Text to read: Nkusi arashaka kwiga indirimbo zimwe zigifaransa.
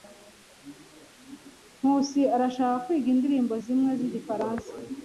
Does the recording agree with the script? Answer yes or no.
yes